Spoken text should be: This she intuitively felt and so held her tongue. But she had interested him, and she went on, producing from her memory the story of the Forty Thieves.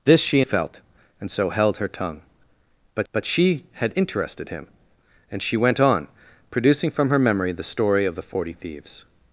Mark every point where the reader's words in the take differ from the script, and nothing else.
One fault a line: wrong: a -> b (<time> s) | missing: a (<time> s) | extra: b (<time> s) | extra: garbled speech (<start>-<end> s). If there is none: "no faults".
missing: intuitively (0.4 s)
extra: but (3.1 s)